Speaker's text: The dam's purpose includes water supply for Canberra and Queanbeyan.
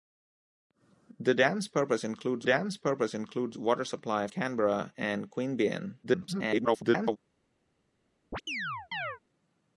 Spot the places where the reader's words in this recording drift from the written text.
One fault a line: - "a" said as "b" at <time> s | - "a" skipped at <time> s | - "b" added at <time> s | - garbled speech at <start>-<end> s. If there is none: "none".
- "dam's purpose includes" added at 2.4 s
- "for" skipped at 4.3 s
- garbled speech at 6.0-7.2 s